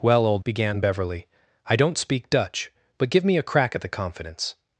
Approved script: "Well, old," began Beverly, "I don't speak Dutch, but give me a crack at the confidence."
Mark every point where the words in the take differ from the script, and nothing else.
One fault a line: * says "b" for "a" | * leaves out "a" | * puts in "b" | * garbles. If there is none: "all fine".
all fine